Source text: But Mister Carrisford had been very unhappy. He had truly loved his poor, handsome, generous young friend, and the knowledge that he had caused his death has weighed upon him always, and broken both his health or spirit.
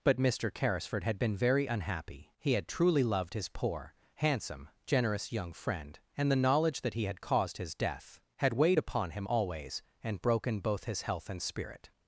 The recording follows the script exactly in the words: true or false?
false